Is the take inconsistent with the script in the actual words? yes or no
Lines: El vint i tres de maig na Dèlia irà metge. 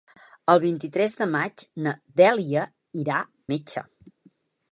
no